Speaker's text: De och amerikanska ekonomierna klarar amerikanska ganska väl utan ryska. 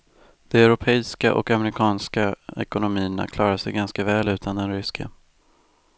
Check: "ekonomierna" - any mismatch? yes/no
no